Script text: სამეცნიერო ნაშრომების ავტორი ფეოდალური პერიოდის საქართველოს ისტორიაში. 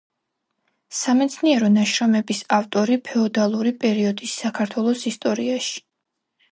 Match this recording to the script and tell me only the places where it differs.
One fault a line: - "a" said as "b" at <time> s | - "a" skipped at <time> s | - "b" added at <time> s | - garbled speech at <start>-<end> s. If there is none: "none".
none